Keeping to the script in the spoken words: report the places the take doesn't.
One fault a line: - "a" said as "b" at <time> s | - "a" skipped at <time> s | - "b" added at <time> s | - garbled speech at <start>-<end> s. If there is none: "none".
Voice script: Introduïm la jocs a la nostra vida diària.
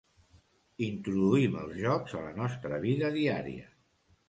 - "la" said as "els" at 1.6 s